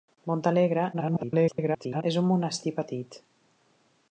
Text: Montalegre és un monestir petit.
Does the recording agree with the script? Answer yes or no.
no